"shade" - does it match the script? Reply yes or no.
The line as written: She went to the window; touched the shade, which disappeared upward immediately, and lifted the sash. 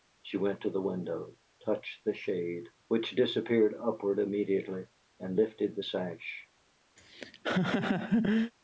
yes